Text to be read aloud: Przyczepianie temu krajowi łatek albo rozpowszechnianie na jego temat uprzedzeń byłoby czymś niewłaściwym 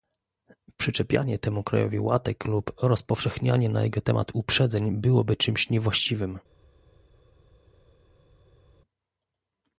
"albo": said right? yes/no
no